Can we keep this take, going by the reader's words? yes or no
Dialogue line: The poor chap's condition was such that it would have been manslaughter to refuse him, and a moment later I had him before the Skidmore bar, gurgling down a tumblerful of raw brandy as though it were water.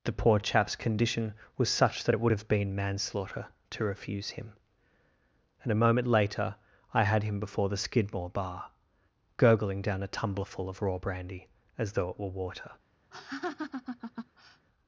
yes